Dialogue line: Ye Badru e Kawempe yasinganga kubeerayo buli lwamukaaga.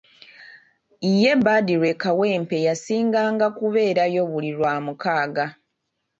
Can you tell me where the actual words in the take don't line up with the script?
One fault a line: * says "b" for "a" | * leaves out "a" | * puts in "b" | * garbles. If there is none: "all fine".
all fine